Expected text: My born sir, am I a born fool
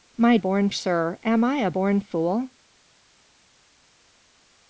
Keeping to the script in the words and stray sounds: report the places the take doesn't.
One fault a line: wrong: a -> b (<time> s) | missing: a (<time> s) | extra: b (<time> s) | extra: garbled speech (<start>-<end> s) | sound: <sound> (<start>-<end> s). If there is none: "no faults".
no faults